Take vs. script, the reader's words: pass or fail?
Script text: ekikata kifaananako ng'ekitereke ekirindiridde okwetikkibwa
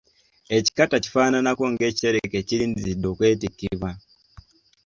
pass